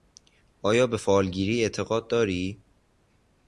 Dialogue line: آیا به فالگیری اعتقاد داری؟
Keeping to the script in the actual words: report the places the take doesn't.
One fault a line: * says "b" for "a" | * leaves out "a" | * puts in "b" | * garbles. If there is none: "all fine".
all fine